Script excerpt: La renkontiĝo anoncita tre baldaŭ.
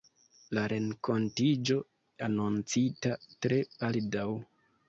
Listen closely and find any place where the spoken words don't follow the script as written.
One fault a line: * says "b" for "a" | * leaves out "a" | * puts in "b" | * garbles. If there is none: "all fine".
all fine